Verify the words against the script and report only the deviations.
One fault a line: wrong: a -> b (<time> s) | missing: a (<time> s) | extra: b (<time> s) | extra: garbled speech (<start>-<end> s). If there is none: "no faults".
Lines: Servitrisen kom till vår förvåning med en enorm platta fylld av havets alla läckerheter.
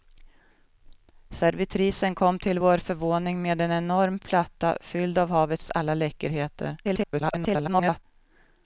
extra: garbled speech (6.8-8.0 s)